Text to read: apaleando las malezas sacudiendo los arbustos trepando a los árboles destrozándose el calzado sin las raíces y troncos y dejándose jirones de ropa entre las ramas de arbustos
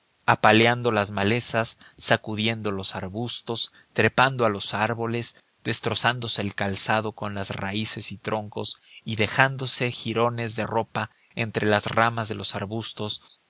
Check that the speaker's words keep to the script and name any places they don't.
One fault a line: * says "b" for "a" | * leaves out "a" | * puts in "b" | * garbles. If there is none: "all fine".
* says "con" for "sin"
* puts in "los"